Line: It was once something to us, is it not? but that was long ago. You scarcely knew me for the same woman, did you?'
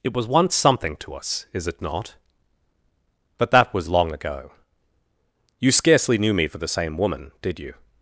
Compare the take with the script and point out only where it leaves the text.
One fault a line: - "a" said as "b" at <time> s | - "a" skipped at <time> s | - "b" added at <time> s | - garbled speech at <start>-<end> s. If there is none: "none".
none